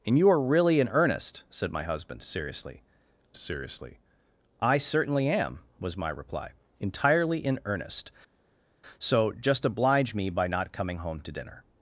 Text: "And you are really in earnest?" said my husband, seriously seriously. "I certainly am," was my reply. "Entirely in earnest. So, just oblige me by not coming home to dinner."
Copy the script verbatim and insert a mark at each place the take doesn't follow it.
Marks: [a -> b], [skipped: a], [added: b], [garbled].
"And you are really in earnest?" said my husband, seriously seriously. "I certainly am," was my reply. "Entirely in earnest. So, just oblige me by not coming home to dinner."